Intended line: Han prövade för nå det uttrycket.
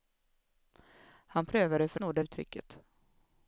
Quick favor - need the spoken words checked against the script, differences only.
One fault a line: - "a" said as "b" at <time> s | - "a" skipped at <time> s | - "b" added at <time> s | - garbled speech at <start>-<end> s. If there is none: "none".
none